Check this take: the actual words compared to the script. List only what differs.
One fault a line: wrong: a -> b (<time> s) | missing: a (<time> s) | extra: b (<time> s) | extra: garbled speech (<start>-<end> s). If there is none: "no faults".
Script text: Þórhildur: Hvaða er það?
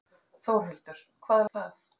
no faults